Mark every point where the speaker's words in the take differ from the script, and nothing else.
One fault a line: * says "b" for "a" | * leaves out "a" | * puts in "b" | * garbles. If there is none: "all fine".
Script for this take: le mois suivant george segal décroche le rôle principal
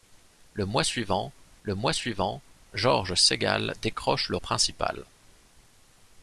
* puts in "le mois suivant"
* leaves out "rôle"